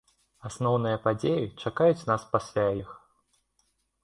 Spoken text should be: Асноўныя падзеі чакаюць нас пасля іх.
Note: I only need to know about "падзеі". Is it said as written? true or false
true